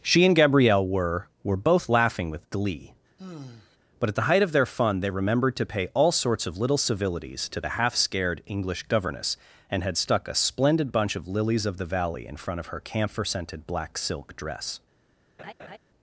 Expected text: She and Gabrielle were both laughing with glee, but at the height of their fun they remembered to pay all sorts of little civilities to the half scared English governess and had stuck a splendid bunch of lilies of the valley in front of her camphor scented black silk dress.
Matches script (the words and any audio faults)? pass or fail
fail